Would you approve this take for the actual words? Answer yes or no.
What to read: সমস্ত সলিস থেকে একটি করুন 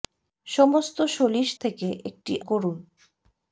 yes